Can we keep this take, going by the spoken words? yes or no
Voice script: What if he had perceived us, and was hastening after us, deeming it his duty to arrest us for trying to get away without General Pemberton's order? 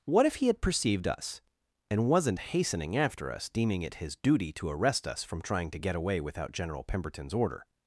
no